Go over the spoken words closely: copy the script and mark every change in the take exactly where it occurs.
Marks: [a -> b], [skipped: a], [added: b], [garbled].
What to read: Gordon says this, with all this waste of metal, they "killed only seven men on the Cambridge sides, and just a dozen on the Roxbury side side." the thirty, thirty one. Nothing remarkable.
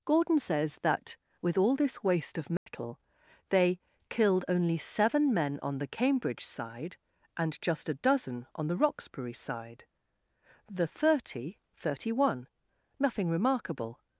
Gordon says [this, -> that] with all this waste of metal, they "killed only seven men on the Cambridge [sides, -> side] and just a dozen on the Roxbury side [skipped: side."] the thirty, thirty one. Nothing remarkable.